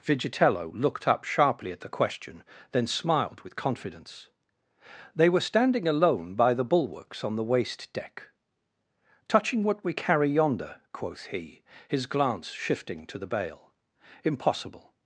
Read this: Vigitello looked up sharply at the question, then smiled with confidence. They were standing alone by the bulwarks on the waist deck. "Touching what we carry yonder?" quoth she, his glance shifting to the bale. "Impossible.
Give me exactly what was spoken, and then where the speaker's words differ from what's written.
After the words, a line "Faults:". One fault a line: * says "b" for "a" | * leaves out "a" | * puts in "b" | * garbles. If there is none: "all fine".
Vigitello looked up sharply at the question, then smiled with confidence. They were standing alone by the bulwarks on the waist deck. "Touching what we carry yonder?" quoth he, his glance shifting to the bale. "Impossible.
Faults:
* says "he" for "she"